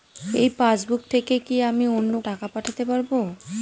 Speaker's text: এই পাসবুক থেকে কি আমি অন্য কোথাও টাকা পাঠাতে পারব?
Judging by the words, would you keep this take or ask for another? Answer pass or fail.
fail